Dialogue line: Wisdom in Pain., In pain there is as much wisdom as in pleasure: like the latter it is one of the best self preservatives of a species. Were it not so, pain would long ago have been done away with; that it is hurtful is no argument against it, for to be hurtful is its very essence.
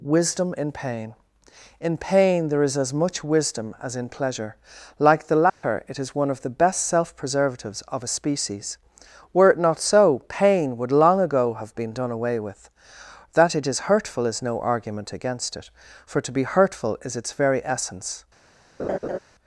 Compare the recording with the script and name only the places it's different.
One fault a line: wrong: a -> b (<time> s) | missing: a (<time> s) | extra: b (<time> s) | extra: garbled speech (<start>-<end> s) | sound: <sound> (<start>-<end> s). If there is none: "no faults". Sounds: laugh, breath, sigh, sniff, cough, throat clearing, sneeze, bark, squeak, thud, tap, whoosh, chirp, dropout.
sound: dropout (5.5-5.6 s)
sound: laugh (18.8-19.2 s)